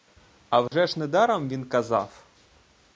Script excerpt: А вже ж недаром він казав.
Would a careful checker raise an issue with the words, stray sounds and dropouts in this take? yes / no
yes